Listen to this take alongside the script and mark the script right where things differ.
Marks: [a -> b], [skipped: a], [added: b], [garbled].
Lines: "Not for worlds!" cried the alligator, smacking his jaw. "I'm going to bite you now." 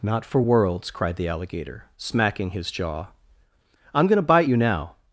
"Not for worlds!" cried the alligator, smacking his jaw. "I'm going to bite you now."